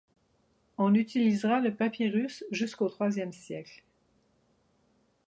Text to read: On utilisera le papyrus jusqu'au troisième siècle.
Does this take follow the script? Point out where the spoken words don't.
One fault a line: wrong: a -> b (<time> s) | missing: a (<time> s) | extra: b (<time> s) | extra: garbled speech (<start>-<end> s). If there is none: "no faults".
no faults